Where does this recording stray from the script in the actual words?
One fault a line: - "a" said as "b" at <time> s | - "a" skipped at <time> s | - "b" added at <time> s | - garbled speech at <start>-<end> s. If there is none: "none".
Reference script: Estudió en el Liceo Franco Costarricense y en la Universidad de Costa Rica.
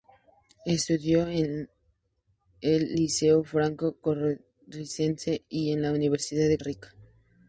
- "Costa" skipped at 6.6 s